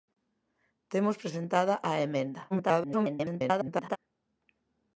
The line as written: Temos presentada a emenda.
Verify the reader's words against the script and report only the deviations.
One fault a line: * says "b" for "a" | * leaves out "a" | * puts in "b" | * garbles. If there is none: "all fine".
* garbles